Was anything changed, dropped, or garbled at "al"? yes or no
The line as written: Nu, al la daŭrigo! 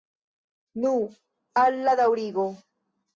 no